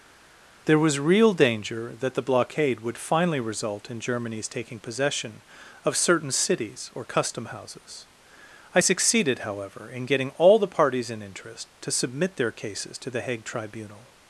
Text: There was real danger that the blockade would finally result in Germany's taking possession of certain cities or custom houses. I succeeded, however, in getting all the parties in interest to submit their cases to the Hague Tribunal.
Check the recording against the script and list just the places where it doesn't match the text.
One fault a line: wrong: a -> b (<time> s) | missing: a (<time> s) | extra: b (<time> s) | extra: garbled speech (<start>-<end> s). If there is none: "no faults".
no faults